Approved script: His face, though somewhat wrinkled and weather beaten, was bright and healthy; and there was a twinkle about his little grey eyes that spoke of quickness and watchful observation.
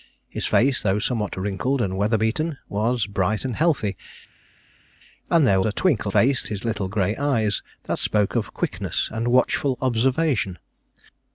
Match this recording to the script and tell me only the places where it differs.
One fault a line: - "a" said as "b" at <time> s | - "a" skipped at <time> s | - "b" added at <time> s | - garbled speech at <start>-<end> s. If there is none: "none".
- "was" skipped at 5.6 s
- "about" said as "face" at 6.1 s